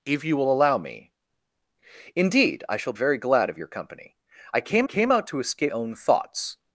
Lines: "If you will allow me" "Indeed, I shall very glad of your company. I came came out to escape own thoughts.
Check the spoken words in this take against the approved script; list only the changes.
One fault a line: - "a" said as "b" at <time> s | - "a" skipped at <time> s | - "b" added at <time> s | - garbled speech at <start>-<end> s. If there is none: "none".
none